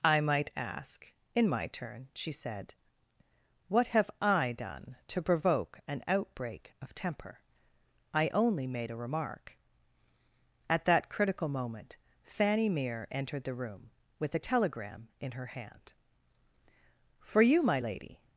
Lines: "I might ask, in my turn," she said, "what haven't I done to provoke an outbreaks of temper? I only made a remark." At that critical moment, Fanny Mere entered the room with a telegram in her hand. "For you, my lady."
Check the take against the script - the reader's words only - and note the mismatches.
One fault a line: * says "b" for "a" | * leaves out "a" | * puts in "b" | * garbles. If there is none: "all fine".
* says "have" for "haven't"
* says "outbreak" for "outbreaks"